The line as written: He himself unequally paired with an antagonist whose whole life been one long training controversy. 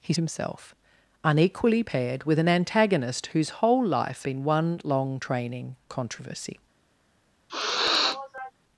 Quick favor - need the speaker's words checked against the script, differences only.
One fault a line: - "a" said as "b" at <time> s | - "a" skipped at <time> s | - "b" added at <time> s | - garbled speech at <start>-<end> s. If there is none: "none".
none